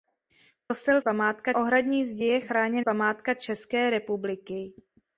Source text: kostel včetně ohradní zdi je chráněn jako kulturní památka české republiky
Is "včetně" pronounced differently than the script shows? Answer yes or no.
yes